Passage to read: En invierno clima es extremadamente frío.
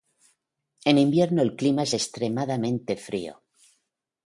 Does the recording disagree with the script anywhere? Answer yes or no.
yes